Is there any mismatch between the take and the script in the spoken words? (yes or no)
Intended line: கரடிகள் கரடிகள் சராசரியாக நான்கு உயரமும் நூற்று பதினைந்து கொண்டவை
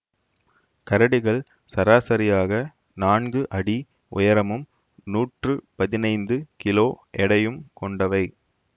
yes